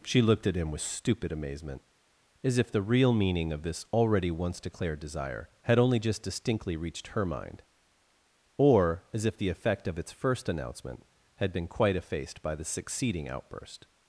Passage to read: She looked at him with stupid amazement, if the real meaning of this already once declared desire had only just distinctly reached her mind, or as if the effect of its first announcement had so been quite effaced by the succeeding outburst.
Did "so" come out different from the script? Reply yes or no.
yes